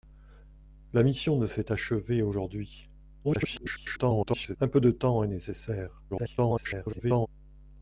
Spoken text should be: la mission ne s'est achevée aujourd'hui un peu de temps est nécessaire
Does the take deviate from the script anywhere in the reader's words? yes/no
yes